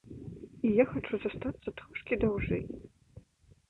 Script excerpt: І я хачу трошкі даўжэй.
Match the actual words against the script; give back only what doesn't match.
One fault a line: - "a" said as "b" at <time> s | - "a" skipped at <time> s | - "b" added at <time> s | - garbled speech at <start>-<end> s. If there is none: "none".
- "застацца" added at 1.3 s